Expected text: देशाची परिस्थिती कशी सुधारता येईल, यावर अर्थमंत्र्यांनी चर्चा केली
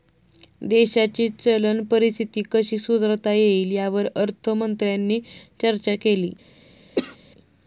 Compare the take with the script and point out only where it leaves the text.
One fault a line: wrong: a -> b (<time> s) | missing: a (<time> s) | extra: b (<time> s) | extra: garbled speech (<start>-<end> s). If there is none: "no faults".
extra: चलन (1.3 s)